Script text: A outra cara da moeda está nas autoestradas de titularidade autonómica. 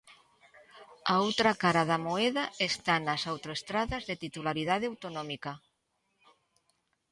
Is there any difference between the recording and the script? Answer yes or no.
no